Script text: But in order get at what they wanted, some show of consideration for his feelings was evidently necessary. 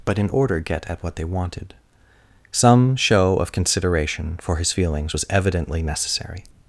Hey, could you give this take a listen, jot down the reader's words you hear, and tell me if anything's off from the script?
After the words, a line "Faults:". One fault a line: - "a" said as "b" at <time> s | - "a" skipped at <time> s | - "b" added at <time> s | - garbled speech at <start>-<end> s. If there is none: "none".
But in order get at what they wanted, some show of consideration for his feelings was evidently necessary.
Faults:
none